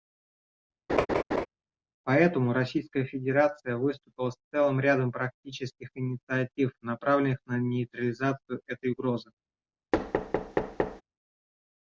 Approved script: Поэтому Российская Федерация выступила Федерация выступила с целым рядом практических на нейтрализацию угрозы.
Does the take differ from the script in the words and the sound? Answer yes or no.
yes